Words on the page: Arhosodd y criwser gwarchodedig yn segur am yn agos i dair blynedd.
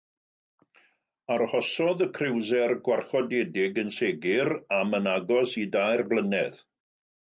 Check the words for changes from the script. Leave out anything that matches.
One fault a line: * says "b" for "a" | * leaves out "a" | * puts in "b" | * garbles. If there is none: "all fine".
all fine